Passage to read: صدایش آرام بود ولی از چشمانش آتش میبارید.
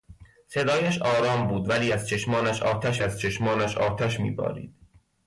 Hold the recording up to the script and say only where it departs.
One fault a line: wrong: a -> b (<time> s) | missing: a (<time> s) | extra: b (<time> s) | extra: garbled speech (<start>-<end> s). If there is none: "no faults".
extra: از چشمانش آتش (3.0 s)